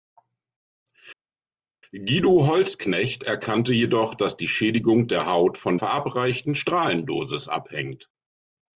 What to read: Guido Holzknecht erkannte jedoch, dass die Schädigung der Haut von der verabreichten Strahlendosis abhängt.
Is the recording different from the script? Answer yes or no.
yes